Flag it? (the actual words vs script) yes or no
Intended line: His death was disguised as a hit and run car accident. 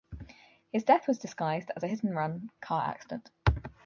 no